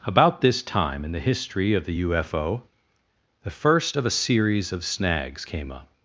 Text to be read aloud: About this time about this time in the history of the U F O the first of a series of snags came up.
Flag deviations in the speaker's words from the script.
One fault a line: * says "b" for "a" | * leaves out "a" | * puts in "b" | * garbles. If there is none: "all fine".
* leaves out "about this time"